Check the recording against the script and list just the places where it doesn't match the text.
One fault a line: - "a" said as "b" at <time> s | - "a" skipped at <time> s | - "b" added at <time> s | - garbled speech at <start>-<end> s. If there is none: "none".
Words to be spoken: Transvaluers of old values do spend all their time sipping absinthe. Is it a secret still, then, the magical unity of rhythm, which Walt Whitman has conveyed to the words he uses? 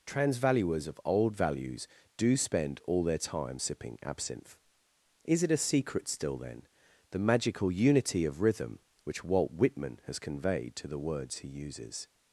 none